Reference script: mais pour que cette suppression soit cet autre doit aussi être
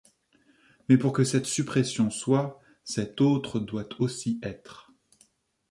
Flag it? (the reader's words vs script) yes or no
no